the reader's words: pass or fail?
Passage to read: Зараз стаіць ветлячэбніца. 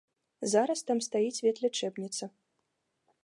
fail